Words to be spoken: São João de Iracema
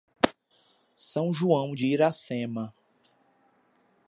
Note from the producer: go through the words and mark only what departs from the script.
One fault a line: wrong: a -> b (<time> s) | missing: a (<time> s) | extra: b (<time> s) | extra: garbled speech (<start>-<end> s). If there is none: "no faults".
no faults